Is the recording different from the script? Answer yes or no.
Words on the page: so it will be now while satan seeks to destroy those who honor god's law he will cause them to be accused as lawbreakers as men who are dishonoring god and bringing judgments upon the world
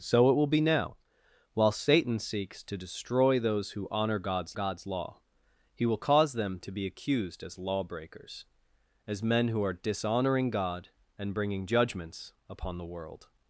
yes